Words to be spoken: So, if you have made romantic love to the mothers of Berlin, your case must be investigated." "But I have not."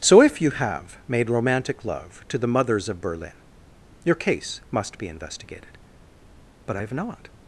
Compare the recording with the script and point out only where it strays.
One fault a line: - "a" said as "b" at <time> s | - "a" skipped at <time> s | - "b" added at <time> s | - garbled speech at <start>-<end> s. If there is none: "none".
none